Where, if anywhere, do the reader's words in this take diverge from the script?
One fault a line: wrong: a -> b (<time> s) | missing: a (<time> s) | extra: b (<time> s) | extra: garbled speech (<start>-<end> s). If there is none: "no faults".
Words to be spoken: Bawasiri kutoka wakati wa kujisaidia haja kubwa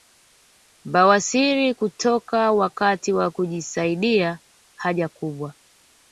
no faults